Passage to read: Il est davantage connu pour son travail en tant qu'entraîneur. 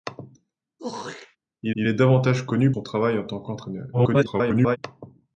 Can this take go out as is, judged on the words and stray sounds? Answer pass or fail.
fail